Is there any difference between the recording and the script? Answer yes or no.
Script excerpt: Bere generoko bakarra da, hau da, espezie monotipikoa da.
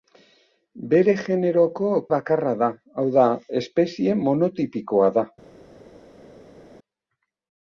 no